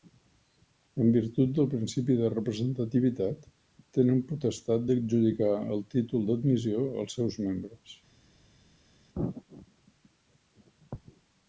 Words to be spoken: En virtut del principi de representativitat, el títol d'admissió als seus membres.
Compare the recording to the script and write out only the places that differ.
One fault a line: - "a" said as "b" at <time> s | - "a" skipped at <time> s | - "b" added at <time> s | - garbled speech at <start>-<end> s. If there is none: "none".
- "tenen potestat d'adjudicar" added at 4.0 s